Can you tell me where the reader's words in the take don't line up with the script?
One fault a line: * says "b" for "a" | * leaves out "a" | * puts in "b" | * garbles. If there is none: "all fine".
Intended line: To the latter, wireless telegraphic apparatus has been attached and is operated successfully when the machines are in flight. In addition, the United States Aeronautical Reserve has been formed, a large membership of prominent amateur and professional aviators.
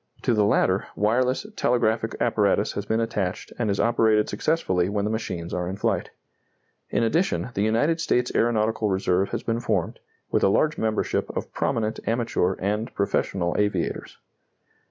* puts in "with"